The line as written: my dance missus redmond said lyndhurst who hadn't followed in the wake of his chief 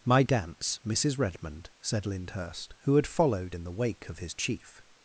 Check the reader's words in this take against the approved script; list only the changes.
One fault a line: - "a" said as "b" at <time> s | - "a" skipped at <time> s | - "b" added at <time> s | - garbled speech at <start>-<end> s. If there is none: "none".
- "hadn't" said as "had" at 2.9 s